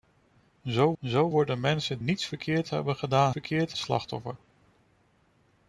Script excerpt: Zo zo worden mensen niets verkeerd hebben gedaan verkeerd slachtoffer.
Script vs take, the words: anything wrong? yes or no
no